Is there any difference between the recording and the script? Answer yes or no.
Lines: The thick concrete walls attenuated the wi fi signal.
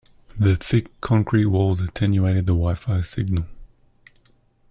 no